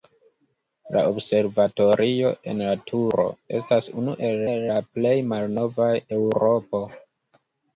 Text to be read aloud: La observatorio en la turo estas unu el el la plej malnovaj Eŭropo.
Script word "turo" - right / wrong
right